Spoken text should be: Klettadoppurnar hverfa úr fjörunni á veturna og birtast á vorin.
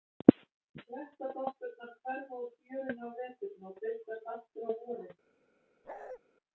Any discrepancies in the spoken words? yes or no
yes